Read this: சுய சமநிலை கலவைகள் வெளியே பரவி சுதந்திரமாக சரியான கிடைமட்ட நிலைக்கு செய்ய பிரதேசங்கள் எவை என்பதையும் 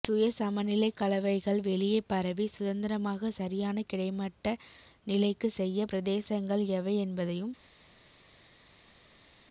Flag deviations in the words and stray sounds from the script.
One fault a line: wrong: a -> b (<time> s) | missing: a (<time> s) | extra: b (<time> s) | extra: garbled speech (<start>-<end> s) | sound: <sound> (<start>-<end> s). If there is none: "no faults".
no faults